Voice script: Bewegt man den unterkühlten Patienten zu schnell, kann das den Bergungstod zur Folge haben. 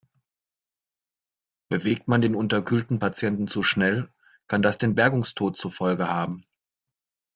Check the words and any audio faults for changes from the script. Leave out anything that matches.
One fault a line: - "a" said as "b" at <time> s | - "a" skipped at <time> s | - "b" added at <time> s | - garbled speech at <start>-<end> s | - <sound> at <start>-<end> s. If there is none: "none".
none